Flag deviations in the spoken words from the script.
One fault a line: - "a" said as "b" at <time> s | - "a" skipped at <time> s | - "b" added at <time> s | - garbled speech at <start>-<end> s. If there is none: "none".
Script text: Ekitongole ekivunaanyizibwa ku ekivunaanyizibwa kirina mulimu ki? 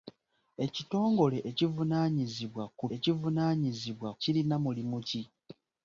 none